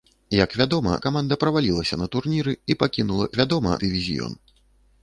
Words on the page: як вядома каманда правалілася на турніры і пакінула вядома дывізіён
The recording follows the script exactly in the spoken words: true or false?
true